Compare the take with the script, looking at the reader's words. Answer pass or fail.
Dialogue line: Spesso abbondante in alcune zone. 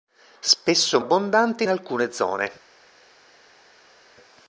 pass